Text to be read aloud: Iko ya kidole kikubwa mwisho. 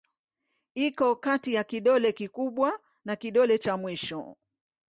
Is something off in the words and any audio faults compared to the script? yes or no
yes